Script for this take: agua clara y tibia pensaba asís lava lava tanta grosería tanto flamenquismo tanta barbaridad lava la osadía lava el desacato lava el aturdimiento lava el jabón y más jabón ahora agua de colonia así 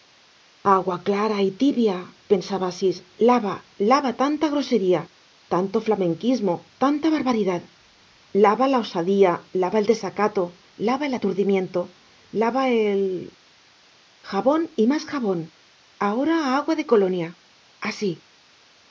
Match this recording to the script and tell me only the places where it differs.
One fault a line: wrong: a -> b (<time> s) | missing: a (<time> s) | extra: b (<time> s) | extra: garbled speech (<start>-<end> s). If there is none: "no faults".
no faults